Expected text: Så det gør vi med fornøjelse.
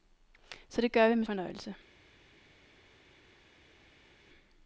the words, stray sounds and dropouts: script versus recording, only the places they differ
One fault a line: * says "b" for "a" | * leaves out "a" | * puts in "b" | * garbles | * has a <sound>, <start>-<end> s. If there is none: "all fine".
all fine